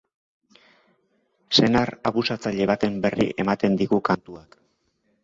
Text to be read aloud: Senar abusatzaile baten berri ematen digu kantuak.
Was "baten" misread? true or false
false